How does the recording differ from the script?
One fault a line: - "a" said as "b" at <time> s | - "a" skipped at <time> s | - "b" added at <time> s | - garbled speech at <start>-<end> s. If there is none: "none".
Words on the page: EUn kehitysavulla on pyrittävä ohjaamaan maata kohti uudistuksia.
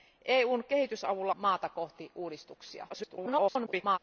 - "on pyrittävä ohjaamaan" skipped at 1.4 s
- garbled speech at 2.9-4.0 s